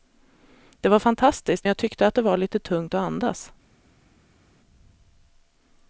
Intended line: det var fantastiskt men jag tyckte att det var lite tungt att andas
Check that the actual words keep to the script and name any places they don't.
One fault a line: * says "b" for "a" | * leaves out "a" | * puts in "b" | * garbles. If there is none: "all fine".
* leaves out "men"